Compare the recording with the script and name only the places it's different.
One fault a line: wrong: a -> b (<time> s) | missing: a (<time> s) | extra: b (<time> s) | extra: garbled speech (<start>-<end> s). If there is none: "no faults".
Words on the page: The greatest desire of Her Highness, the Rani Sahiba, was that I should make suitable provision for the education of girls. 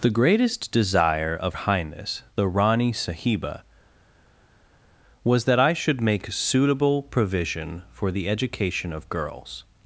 missing: Her (1.6 s)